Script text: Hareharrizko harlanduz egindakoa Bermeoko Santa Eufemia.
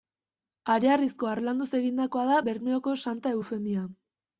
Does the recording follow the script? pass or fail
fail